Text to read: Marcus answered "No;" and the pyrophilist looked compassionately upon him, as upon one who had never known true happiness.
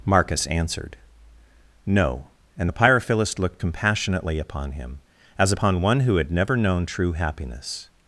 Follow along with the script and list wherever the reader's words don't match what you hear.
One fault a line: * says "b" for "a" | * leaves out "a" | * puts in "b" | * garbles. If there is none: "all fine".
all fine